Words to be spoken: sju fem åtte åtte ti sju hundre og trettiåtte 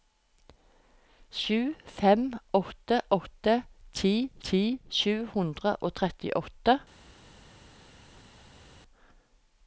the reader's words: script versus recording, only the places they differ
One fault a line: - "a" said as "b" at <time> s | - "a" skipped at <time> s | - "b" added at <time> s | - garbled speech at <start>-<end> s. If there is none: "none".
- "ti" added at 4.5 s